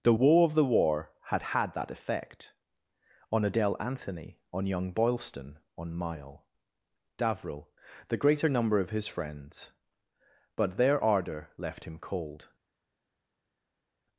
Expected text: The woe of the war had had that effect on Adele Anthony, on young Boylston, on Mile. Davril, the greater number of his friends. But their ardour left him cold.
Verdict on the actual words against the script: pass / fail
pass